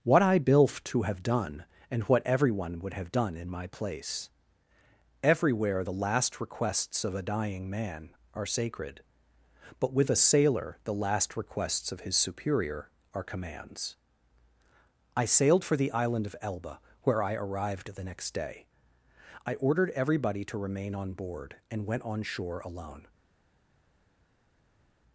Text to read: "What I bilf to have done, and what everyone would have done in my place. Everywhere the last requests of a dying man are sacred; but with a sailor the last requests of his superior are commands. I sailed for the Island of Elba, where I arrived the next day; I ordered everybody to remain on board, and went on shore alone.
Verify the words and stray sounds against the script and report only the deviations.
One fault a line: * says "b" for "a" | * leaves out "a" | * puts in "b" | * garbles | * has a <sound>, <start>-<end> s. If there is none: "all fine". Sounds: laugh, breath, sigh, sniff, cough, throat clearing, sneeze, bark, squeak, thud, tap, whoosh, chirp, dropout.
all fine